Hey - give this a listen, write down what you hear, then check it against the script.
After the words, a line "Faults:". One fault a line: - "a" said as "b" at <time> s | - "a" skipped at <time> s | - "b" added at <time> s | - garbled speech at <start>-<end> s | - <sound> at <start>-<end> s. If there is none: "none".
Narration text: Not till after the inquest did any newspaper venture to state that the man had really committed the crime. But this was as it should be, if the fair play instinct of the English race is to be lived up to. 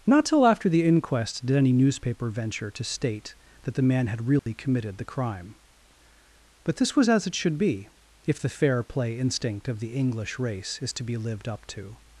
Not till after the inquest did any newspaper venture to state that the man had really committed the crime. But this was as it should be, if the fair play instinct of the English race is to be lived up to.
Faults:
- dropout at 4.4-4.5 s